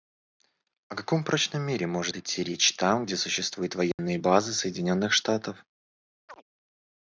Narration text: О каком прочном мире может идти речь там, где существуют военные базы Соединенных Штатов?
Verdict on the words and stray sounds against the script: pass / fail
fail